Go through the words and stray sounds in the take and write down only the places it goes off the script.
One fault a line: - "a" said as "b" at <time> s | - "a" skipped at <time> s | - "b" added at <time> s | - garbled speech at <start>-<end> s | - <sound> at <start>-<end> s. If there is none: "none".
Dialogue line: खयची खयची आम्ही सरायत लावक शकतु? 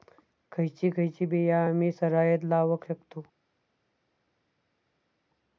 - "बिया" added at 1.2 s